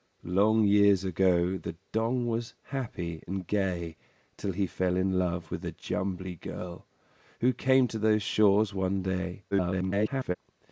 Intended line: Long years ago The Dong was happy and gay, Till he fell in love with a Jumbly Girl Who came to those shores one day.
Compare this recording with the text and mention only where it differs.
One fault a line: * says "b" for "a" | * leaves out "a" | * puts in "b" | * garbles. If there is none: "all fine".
* garbles